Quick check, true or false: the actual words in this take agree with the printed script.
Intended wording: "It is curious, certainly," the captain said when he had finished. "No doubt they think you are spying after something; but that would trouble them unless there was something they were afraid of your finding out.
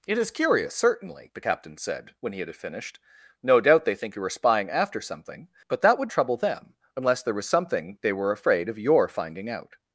true